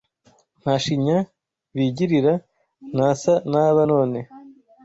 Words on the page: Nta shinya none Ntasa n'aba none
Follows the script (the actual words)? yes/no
no